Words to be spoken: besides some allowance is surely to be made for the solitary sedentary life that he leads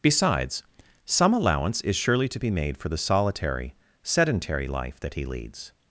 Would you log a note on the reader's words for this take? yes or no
no